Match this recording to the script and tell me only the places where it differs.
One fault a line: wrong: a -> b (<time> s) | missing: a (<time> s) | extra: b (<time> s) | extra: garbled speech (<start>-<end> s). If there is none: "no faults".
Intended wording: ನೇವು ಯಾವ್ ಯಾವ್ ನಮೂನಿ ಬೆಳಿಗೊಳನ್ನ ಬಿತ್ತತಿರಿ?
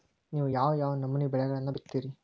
no faults